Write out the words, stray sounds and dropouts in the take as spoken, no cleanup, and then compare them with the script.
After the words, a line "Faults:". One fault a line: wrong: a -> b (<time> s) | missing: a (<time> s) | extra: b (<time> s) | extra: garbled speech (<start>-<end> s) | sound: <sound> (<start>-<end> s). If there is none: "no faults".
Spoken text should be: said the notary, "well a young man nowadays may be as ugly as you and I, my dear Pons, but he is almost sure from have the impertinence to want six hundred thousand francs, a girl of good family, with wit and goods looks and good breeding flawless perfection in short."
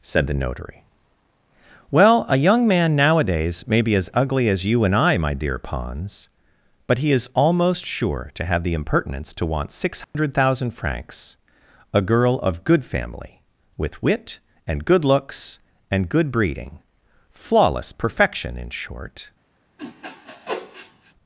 said the notary, "well a young man nowadays may be as ugly as you and I, my dear Pons, but he is almost sure to have the impertinence to want six hundred thousand francs, a girl of good family, with wit and good looks and good breeding flawless perfection in short."
Faults:
wrong: from -> to (8.3 s)
sound: dropout (10.0-10.1 s)
wrong: goods -> good (14.8 s)
sound: sniff (19.8-21.1 s)